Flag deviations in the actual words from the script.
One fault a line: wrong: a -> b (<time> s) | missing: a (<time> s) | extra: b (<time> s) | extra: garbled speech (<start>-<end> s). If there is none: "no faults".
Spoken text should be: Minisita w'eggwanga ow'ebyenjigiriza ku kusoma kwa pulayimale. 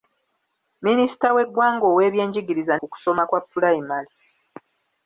no faults